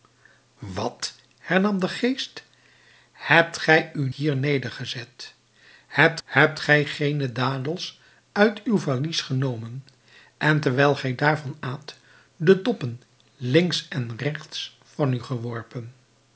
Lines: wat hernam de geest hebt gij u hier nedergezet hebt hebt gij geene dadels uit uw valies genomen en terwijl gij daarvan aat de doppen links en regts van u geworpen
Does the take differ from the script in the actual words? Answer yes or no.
no